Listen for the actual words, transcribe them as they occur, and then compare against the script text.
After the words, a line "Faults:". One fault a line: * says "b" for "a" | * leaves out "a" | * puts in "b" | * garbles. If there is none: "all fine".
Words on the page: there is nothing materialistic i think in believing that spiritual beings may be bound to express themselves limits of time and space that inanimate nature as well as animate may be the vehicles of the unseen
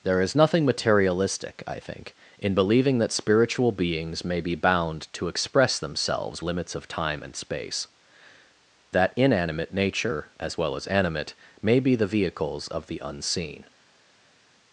there is nothing materialistic i think in believing that spiritual beings may be bound to express themselves limits of time and space that inanimate nature as well as animate may be the vehicles of the unseen
Faults:
all fine